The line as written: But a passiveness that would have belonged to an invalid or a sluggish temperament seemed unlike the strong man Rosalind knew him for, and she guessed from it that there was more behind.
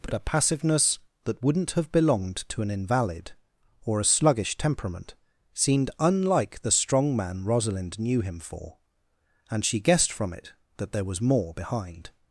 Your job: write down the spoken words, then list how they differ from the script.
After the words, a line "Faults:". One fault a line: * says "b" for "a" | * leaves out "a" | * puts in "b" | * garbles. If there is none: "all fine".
But a passiveness that wouldn't have belonged to an invalid or a sluggish temperament seemed unlike the strong man Rosalind knew him for, and she guessed from it that there was more behind.
Faults:
* says "wouldn't" for "would"